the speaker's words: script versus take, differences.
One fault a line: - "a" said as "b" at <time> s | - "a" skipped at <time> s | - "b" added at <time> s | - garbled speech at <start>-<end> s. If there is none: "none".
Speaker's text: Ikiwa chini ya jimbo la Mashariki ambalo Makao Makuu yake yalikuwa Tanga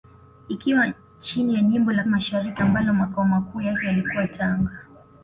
none